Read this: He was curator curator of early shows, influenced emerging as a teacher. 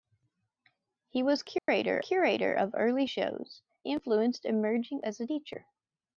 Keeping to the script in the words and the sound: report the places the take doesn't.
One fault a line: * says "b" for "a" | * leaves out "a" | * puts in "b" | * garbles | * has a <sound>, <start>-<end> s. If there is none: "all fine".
* has a dropout, 1.6-1.7 s